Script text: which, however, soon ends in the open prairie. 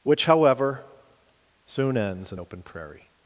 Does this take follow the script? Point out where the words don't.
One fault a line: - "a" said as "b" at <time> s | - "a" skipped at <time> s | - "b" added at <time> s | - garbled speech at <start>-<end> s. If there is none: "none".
- "the" skipped at 2.4 s